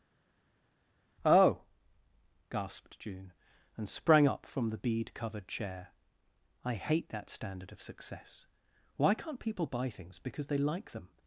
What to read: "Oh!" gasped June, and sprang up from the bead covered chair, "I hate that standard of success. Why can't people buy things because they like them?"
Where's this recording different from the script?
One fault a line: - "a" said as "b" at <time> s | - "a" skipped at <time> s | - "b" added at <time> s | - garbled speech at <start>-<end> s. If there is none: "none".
none